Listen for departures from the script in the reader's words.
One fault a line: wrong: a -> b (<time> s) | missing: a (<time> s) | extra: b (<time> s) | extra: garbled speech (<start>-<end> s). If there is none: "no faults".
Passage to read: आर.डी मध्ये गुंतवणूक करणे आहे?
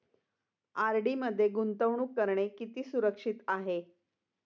extra: किती सुरक्षित (2.5 s)